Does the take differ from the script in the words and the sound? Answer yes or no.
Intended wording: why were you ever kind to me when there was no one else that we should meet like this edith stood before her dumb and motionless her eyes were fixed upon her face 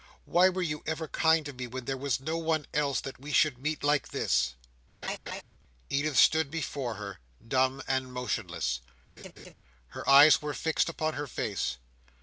yes